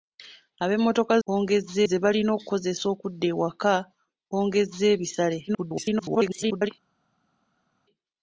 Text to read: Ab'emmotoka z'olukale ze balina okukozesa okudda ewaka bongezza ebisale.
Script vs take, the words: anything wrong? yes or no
yes